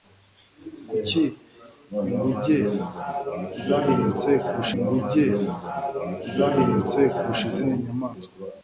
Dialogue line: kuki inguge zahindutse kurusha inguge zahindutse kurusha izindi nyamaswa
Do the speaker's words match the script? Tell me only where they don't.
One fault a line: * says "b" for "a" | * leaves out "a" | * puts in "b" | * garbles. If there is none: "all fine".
all fine